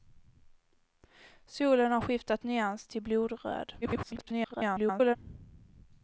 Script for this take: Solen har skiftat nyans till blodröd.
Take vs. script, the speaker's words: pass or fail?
fail